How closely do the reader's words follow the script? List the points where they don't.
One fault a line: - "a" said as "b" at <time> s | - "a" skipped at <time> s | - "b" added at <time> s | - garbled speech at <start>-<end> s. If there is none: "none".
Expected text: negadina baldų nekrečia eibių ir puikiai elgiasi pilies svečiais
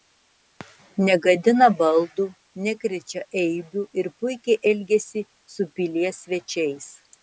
- "su" added at 5.6 s